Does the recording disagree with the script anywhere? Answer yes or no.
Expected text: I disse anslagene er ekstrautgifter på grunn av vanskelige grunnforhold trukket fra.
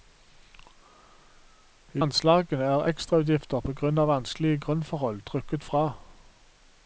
yes